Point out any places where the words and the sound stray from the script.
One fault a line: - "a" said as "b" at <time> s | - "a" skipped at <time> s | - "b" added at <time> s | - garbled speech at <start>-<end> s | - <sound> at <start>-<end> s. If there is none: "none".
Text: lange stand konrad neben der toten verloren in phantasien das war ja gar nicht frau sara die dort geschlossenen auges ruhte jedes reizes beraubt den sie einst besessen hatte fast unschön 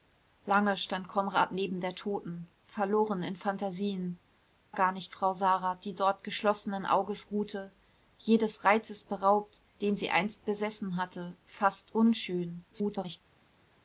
- "das war ja" skipped at 4.2 s
- garbled speech at 12.7-13.2 s